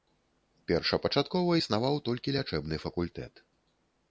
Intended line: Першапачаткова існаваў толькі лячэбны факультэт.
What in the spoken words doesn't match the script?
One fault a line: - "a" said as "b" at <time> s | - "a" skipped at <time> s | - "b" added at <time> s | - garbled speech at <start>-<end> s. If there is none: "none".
none